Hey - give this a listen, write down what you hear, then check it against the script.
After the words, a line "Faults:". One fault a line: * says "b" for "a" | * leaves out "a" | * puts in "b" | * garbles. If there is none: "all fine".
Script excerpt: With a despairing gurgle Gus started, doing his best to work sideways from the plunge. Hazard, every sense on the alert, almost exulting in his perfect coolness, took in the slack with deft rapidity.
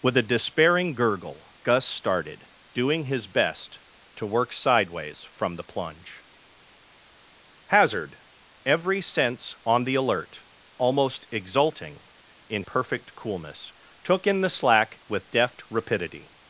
With a despairing gurgle Gus started, doing his best to work sideways from the plunge. Hazard, every sense on the alert, almost exulting in perfect coolness, took in the slack with deft rapidity.
Faults:
* leaves out "his"